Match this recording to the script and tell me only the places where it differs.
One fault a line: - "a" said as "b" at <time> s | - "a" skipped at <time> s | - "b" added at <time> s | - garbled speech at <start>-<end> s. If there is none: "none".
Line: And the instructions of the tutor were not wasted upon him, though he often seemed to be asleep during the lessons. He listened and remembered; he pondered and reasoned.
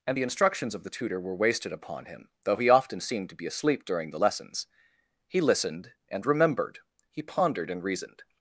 - "not" skipped at 1.3 s